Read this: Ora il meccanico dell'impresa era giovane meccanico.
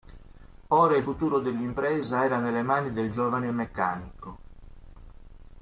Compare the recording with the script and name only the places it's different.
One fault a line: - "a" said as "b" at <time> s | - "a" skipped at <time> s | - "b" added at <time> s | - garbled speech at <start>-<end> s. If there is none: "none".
- "meccanico" said as "futuro" at 1.0 s
- "nelle mani del" added at 2.4 s